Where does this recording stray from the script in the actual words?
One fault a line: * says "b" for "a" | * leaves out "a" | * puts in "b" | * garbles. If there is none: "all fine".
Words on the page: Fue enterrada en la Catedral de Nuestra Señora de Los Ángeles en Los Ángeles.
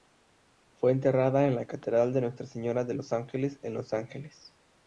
all fine